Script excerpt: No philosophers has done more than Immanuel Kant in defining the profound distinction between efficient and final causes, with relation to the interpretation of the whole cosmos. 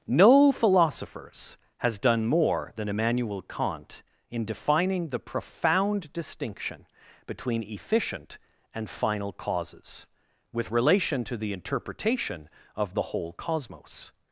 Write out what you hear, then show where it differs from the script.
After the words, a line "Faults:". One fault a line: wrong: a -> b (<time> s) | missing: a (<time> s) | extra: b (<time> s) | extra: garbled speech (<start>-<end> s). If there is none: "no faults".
No philosophers has done more than Immanuel Kant in defining the profound distinction between efficient and final causes, with relation to the interpretation of the whole cosmos.
Faults:
no faults